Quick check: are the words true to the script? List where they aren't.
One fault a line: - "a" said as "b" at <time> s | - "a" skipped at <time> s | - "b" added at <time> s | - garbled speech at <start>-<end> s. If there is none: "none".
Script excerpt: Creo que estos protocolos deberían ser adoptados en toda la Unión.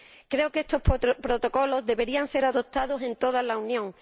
none